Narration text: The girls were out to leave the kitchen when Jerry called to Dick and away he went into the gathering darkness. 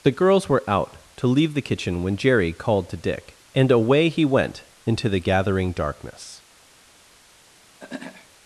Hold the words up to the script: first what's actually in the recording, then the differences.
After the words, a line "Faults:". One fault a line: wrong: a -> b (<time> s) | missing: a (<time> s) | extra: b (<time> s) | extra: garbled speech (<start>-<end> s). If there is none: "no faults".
The girls were out to leave the kitchen when Jerry called to Dick and away he went into the gathering darkness.
Faults:
no faults